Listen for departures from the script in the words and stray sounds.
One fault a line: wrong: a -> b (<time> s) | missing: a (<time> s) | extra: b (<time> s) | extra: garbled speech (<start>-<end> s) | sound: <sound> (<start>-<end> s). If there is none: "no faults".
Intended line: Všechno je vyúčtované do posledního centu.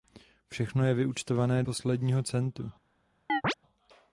missing: do (1.6 s)
sound: chirp (3.3-3.5 s)